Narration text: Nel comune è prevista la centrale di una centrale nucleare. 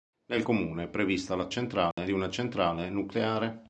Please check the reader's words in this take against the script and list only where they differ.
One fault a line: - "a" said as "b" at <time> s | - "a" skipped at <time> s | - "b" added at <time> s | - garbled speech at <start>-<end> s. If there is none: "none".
none